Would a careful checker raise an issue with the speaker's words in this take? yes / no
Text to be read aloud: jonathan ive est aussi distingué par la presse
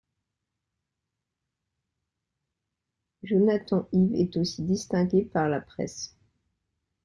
no